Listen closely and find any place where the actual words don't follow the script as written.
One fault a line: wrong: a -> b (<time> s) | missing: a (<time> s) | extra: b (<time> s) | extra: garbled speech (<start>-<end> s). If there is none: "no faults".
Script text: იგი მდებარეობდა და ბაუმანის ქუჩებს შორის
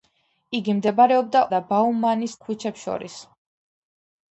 no faults